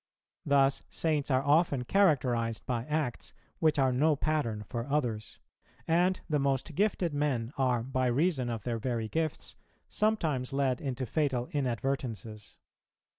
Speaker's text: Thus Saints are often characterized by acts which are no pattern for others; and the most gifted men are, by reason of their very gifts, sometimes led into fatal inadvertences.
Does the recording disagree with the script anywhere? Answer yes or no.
no